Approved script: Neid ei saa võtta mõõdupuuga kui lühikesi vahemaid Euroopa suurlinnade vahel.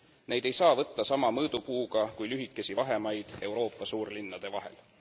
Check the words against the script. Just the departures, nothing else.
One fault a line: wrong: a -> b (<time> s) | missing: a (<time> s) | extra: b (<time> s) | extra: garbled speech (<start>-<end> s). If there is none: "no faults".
extra: sama (1.1 s)